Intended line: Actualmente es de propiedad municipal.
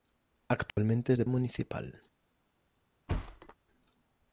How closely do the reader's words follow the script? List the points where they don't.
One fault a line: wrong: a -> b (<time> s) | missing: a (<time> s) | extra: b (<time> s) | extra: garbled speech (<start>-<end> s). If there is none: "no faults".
missing: propiedad (1.2 s)